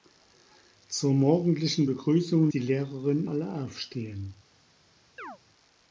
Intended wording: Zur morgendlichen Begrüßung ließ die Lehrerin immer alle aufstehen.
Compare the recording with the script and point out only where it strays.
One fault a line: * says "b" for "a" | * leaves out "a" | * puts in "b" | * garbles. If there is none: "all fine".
* leaves out "ließ"
* leaves out "immer"